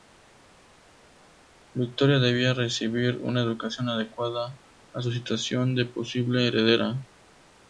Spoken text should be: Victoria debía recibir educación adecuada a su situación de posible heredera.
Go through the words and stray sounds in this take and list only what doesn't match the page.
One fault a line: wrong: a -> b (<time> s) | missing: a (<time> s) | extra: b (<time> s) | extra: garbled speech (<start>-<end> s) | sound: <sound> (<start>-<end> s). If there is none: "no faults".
extra: una (3.2 s)